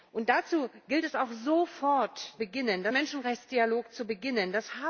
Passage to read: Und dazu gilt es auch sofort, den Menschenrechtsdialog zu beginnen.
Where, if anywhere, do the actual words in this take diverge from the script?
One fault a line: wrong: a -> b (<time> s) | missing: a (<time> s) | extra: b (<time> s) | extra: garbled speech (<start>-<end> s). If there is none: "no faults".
wrong: den -> beginnen (2.4 s)